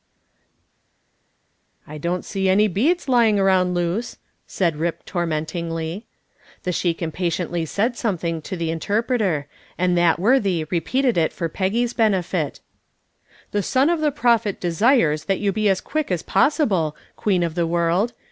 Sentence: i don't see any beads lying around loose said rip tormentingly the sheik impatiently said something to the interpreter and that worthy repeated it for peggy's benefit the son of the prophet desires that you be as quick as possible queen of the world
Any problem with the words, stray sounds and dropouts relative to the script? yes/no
no